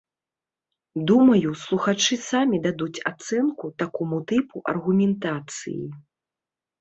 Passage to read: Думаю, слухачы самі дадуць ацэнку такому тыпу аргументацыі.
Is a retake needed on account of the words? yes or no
no